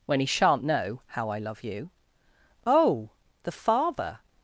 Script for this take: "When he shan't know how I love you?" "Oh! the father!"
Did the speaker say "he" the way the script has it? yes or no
yes